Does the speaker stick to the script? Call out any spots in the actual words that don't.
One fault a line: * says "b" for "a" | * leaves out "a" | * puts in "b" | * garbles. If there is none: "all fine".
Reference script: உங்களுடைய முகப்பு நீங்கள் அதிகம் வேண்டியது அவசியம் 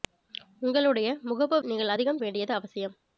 all fine